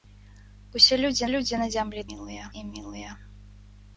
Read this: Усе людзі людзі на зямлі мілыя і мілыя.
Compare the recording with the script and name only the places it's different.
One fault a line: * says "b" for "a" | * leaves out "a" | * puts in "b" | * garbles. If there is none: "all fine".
all fine